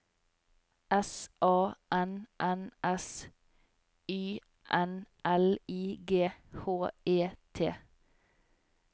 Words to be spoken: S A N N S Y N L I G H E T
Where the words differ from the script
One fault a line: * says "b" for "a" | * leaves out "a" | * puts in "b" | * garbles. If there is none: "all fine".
all fine